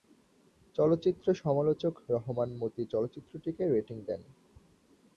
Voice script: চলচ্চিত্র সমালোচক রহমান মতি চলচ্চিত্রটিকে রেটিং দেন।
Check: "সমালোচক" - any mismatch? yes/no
no